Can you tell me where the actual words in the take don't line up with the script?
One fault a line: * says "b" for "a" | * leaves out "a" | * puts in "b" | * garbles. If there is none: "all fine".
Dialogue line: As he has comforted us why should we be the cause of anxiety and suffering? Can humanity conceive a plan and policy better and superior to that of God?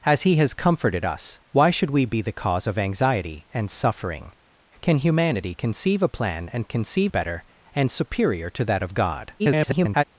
* says "conceive" for "policy"
* garbles